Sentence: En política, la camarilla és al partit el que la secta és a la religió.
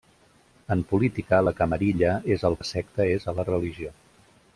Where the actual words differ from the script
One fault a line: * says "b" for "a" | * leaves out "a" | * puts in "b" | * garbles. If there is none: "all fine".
* leaves out "partit el que"